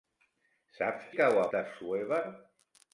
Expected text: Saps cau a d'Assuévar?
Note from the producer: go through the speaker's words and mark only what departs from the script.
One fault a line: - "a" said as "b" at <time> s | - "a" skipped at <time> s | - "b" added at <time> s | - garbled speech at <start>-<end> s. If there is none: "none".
none